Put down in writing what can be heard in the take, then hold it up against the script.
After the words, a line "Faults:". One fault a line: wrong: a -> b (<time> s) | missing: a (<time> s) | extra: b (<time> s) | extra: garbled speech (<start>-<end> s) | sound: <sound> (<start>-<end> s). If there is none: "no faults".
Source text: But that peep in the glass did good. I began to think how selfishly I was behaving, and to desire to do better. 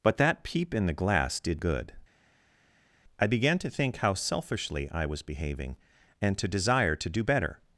But that peep in the glass did good. I began to think how selfishly I was behaving, and to desire to do better.
Faults:
no faults